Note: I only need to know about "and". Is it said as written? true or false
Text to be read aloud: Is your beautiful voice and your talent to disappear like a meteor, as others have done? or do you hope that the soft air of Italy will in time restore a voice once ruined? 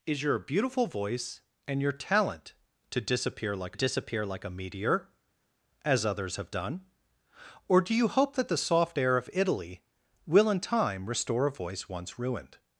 true